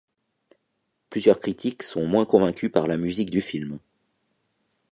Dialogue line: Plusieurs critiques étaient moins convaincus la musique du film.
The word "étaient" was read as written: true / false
false